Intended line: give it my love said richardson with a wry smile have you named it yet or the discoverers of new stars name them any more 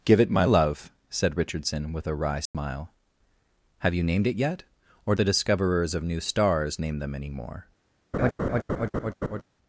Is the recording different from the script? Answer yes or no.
no